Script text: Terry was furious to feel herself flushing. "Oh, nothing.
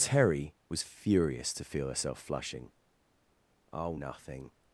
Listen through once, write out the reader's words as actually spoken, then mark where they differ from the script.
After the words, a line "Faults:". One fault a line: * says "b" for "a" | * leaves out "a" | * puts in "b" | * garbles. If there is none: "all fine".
Terry was furious to feel herself flushing. "Oh, nothing.
Faults:
all fine